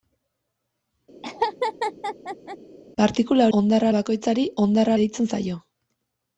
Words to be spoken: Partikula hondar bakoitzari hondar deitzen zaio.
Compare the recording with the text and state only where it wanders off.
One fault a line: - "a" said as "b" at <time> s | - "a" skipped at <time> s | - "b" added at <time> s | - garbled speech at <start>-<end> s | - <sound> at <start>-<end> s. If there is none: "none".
- laugh at 1.2-2.6 s